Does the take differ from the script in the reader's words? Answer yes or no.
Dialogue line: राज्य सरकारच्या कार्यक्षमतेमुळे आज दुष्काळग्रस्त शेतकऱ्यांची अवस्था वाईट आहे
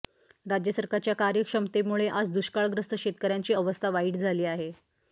yes